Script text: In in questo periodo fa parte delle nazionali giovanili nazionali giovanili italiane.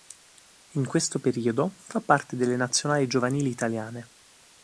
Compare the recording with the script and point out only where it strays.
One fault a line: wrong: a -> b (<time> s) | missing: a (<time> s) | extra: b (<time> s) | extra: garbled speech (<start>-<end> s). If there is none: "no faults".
missing: in (0.9 s)
missing: nazionali giovanili (3.5 s)